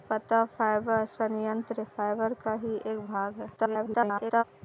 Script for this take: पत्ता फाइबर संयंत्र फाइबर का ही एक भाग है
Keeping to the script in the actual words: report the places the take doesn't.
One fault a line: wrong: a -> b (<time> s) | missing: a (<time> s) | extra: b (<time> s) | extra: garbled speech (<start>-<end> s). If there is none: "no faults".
extra: garbled speech (3.6-4.4 s)